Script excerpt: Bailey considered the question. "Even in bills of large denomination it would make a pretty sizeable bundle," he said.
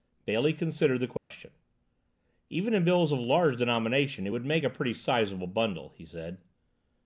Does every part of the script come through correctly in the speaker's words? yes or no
yes